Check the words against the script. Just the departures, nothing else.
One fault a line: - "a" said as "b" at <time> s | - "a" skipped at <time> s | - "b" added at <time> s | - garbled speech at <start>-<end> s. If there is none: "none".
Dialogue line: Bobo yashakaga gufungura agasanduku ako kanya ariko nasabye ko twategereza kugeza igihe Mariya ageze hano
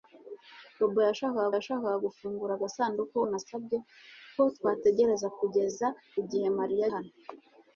- "yashakaga" added at 1.6 s
- "ako kanya ariko" skipped at 3.2 s
- "ageze" skipped at 6.8 s